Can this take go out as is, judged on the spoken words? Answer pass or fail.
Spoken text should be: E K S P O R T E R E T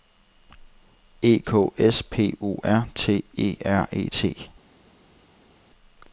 pass